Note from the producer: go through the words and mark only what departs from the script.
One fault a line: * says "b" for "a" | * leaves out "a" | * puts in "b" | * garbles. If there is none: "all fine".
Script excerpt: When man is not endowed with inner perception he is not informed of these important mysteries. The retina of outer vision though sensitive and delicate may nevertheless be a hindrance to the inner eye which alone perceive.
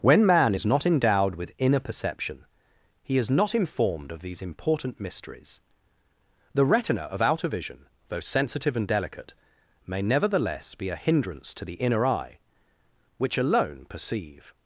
all fine